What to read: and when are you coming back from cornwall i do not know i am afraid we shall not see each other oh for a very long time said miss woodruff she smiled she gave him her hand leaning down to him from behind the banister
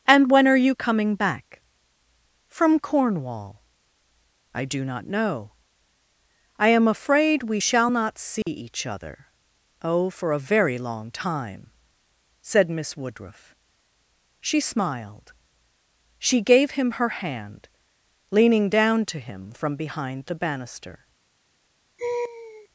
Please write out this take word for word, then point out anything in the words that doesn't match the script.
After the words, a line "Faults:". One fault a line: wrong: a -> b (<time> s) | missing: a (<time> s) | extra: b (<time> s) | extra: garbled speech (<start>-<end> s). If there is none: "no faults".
and when are you coming back from cornwall i do not know i am afraid we shall not see each other oh for a very long time said miss woodruff she smiled she gave him her hand leaning down to him from behind the banister
Faults:
no faults